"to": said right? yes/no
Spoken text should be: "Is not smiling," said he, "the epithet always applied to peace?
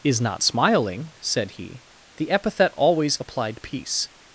no